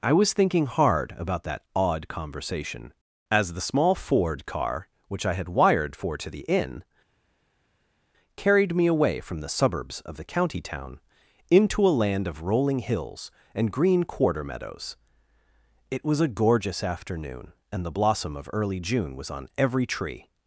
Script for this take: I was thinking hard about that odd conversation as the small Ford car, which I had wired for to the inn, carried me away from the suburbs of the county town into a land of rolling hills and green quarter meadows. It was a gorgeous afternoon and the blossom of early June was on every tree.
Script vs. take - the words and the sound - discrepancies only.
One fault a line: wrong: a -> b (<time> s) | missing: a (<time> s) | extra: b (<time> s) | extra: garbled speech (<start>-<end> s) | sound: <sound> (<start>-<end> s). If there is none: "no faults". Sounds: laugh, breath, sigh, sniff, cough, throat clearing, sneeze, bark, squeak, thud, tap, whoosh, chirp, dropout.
no faults